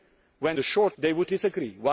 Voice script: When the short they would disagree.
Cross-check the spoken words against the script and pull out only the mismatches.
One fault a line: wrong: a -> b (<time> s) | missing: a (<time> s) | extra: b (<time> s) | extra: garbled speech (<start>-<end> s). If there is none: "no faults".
no faults